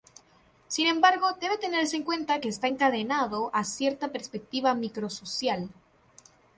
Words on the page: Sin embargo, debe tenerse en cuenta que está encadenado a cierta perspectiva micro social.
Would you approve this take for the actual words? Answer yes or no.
yes